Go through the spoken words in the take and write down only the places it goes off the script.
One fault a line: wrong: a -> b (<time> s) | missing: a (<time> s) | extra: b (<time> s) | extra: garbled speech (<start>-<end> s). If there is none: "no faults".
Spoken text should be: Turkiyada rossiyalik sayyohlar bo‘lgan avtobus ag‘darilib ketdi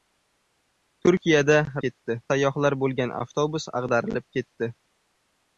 wrong: rossiyalik -> ketdi (1.9 s)